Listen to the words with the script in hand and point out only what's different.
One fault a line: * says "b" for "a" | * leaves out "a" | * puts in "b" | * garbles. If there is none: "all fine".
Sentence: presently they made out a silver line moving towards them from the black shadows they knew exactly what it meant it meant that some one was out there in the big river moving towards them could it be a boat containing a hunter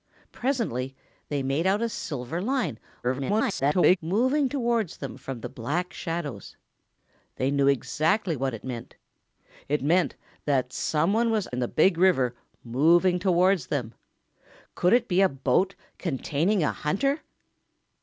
* garbles
* leaves out "out there"